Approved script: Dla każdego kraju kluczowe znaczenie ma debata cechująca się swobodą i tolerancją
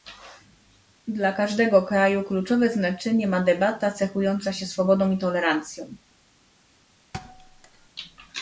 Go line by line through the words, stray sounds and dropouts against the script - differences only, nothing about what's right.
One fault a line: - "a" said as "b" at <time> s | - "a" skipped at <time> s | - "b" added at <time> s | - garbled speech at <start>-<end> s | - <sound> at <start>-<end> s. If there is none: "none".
- thud at 7.1-7.9 s